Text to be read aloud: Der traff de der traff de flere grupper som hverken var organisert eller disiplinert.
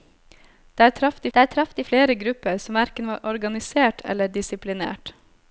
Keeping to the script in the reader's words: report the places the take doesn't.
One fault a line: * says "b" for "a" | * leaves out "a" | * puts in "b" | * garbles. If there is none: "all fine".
all fine